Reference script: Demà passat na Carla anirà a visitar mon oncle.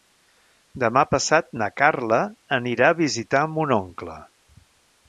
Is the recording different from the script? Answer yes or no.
no